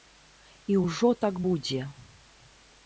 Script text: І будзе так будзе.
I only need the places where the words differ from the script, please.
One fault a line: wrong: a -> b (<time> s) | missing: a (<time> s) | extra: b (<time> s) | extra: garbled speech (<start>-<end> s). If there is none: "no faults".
wrong: будзе -> ўжо (0.8 s)